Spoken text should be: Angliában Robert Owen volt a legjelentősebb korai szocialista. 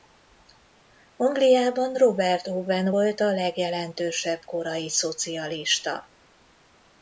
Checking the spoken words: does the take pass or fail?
pass